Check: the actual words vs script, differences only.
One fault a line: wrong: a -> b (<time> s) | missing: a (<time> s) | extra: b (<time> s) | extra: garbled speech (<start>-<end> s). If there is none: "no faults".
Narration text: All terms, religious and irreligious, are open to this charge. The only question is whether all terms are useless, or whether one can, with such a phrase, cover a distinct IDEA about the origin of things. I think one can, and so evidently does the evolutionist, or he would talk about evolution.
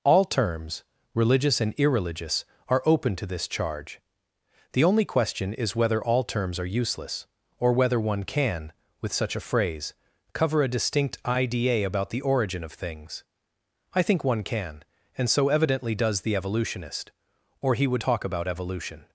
no faults